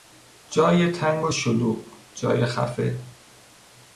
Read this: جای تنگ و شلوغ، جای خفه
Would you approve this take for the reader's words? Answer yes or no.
yes